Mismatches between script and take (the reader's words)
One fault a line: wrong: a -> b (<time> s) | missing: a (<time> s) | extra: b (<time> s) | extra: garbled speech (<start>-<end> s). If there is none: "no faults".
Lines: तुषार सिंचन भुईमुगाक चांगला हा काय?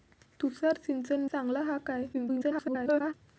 missing: भुईमुगाक (1.3 s)
extra: garbled speech (2.1-3.1 s)